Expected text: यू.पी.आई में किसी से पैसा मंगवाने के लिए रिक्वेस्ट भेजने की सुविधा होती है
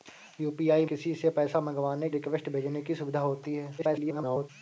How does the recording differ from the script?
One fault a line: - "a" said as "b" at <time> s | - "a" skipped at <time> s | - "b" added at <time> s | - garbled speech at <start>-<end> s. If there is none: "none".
- "में" skipped at 0.8 s
- "के लिए" skipped at 2.1 s
- garbled speech at 3.8-4.5 s